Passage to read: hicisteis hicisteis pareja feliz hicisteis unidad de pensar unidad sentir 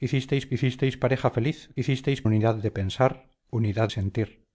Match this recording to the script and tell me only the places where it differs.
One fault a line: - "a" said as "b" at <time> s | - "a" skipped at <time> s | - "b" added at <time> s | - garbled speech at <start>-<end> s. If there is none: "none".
none